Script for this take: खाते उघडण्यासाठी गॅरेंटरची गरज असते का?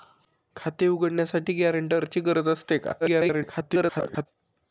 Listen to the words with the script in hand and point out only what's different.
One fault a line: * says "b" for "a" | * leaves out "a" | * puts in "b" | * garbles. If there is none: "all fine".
* garbles